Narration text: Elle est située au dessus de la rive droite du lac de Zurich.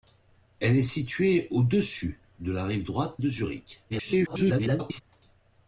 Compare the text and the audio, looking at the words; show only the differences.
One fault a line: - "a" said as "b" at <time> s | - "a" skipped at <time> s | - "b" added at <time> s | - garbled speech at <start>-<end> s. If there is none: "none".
- "du lac" skipped at 3.2 s
- garbled speech at 3.9-5.0 s